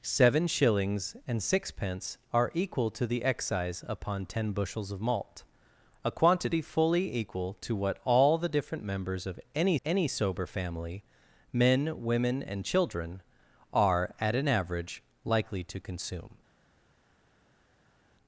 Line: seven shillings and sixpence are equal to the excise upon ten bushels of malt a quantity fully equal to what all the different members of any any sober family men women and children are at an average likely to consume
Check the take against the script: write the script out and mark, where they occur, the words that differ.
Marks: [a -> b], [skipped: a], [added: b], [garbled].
seven shillings and sixpence are equal to the excise upon ten bushels of malt a quantity fully equal to what all the different members of any any sober family men women and children are at an average likely to consume